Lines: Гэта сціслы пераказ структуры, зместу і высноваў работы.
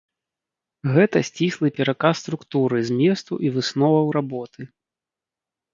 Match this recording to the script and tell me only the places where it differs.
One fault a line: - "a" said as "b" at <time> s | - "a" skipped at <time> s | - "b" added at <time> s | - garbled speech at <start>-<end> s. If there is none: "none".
none